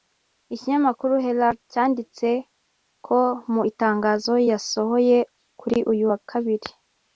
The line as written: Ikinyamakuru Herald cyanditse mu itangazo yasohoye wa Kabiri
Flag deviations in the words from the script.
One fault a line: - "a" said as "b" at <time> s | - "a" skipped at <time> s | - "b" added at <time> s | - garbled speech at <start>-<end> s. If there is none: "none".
- "ko" added at 3.0 s
- "kuri uyu" added at 5.6 s